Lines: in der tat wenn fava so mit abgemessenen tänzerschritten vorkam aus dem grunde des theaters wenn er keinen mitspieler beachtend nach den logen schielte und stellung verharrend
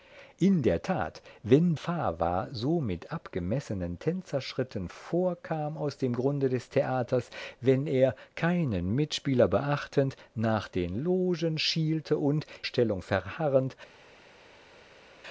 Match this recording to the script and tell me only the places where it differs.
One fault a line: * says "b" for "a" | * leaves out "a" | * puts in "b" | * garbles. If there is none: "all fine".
all fine